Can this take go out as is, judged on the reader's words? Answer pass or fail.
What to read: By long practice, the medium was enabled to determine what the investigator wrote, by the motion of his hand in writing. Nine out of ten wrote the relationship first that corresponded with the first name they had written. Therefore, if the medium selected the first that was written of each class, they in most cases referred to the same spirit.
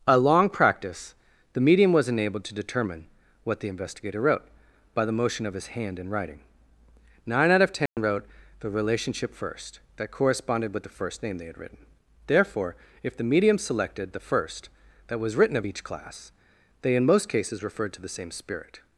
fail